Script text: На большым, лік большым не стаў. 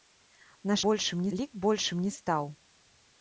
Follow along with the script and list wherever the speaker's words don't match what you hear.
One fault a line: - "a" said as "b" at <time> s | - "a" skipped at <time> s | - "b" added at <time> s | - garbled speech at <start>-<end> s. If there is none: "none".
none